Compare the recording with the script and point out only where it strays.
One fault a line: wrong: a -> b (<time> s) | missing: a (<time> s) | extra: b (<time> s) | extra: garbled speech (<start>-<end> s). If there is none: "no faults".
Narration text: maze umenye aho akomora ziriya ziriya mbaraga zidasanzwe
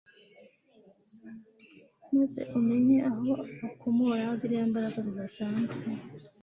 missing: ziriya (4.6 s)